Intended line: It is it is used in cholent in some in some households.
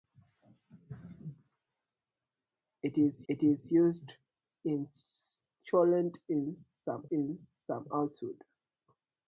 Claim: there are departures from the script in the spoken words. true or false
false